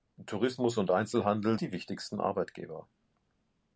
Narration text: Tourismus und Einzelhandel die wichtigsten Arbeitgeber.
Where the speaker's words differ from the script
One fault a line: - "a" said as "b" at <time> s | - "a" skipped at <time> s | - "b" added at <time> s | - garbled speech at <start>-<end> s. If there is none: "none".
none